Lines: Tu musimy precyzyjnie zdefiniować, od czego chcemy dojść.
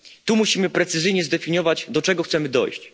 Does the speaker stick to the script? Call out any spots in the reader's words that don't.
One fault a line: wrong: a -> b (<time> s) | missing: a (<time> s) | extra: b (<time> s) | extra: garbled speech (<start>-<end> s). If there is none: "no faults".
wrong: od -> do (1.9 s)